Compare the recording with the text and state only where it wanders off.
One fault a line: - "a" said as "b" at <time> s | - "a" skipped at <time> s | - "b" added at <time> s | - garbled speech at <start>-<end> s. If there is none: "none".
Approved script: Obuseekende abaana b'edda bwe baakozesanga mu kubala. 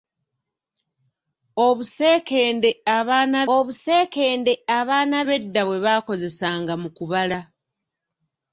- "obuseekende abaana" added at 3.5 s